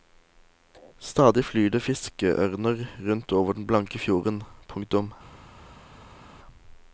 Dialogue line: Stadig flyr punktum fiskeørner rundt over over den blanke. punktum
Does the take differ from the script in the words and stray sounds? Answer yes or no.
yes